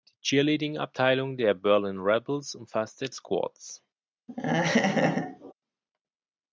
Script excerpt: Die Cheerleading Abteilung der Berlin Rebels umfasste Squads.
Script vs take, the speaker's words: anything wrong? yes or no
no